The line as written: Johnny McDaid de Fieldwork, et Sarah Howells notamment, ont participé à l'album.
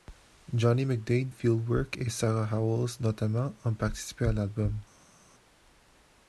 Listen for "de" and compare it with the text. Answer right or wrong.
wrong